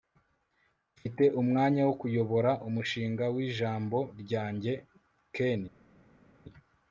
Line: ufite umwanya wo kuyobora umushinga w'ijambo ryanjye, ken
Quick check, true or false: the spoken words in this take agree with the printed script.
true